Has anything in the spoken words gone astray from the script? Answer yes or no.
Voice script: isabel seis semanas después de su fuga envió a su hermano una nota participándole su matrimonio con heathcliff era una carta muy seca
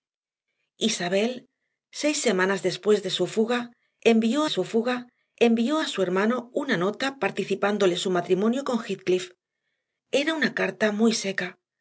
yes